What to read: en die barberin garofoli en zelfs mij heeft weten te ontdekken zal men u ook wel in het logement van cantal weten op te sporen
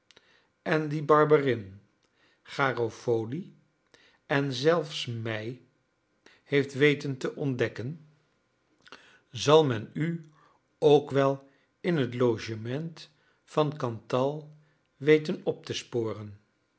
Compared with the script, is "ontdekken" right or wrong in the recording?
right